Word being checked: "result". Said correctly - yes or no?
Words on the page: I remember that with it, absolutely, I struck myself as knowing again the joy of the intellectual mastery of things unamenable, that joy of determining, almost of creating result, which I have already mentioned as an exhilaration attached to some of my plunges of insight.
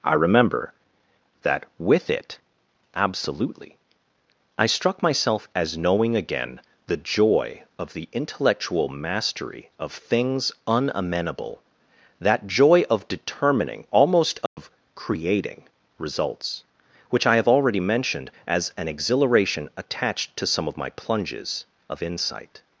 no